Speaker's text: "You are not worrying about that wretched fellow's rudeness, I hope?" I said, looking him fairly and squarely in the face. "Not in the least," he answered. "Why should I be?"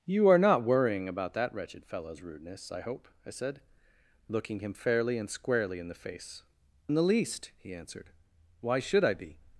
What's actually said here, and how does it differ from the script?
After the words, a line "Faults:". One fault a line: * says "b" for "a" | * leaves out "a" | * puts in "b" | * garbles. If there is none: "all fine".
"You are not worrying about that wretched fellow's rudeness, I hope?" I said, looking him fairly and squarely in the face. "In the least," he answered. "Why should I be?"
Faults:
* leaves out "Not"